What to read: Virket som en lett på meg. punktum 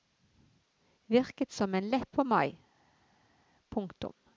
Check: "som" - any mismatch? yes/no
no